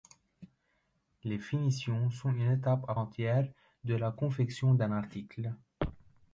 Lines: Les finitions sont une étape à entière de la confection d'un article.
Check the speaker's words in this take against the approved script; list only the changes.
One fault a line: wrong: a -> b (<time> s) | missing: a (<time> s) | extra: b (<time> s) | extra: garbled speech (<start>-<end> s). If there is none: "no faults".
no faults